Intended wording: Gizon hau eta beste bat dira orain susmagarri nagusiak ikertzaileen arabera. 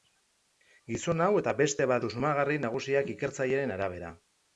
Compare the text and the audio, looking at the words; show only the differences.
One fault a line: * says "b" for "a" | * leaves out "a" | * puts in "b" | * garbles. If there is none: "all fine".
* leaves out "dira orain"